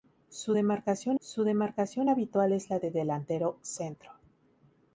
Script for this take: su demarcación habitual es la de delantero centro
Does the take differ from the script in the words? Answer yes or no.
yes